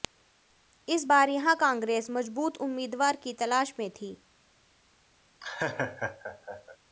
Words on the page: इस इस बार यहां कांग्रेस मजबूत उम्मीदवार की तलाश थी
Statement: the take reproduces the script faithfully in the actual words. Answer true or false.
false